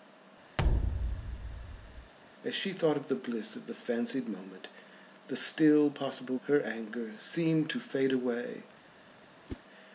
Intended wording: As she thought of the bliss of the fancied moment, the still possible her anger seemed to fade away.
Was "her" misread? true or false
false